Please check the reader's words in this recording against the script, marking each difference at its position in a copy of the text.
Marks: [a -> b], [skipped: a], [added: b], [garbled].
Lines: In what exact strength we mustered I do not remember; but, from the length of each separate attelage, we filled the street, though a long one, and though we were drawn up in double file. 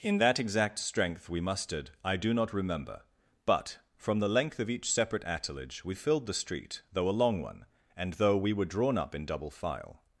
In [what -> that] exact strength we mustered I do not remember; but, from the length of each separate attelage, we filled the street, though a long one, and though we were drawn up in double file.